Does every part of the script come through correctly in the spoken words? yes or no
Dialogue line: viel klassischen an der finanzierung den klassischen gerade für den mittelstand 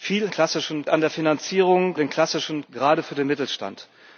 yes